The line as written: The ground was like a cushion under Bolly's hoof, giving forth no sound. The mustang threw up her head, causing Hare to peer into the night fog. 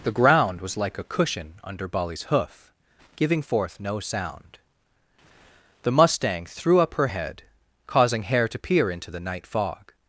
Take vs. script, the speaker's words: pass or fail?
pass